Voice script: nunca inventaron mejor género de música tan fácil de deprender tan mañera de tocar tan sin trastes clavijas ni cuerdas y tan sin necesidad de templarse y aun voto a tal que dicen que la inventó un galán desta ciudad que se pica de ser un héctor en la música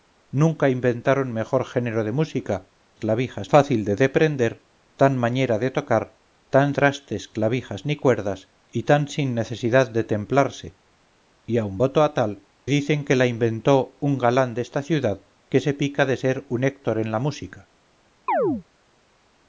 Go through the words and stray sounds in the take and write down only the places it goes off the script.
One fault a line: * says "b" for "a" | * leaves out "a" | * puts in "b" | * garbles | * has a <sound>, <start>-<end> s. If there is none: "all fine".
* says "clavijas" for "tan"
* leaves out "sin"
* leaves out "que"
* has a chirp, 18.3-18.6 s